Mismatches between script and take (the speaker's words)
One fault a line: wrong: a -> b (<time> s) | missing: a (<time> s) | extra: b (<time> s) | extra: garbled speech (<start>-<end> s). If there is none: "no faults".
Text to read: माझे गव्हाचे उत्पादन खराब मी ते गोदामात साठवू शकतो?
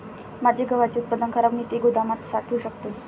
no faults